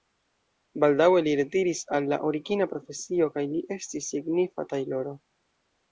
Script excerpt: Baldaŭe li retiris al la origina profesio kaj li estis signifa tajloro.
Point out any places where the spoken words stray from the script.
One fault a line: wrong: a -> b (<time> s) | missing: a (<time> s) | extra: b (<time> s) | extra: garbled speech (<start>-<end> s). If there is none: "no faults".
no faults